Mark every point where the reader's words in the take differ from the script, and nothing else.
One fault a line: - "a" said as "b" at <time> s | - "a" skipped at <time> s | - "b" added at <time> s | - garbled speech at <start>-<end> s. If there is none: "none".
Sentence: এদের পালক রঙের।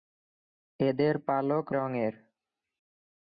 none